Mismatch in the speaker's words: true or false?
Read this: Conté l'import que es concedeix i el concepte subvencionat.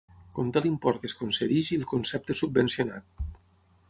false